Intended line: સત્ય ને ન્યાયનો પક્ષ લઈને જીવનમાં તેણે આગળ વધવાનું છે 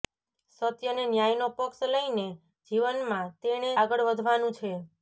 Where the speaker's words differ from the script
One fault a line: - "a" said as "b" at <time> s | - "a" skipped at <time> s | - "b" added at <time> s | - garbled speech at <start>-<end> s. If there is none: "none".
none